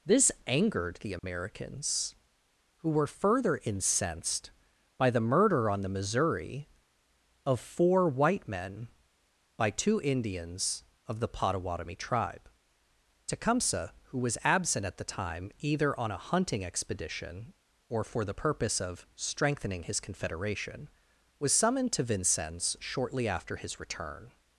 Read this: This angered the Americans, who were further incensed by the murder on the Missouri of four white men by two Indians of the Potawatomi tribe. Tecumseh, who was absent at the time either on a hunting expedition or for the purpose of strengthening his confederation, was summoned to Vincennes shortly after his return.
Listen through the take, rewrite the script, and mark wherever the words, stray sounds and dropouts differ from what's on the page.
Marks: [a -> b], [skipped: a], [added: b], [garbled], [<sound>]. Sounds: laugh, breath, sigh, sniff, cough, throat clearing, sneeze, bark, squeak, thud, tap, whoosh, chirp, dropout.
This angered the Americans, [dropout] who were further incensed by the murder on the Missouri of four white men by two Indians of the Potawatomi tribe. Tecumseh, who was absent at the time either on a hunting expedition or for the purpose of strengthening his confederation, was summoned to Vincennes shortly after his return.